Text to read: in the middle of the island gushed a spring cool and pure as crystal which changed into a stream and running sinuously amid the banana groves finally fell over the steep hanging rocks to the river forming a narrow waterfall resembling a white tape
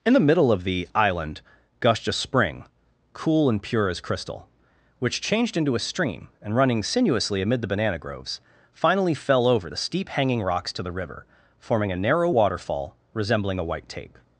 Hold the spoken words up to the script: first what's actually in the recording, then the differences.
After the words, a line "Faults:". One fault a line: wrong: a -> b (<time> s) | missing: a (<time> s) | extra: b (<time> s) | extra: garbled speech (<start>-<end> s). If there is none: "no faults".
in the middle of the island gushed a spring cool and pure as crystal which changed into a stream and running sinuously amid the banana groves finally fell over the steep hanging rocks to the river forming a narrow waterfall resembling a white tape
Faults:
no faults